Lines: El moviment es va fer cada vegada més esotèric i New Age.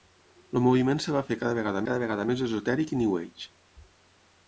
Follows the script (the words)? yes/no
no